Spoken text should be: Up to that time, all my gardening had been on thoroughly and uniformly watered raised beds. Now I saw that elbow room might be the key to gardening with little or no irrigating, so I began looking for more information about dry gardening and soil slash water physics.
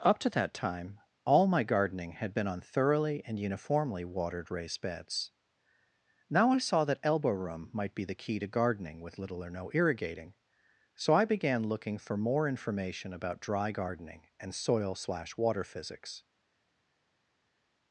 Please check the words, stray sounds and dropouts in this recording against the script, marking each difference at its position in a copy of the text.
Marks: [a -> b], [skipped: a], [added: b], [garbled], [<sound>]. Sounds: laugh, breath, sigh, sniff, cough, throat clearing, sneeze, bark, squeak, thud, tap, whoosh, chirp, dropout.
Up to that time, all my gardening had been on thoroughly and uniformly watered raised beds. Now I saw that elbow room might be the key to gardening with little or no irrigating, so I began looking for more information about dry gardening and soil slash water physics.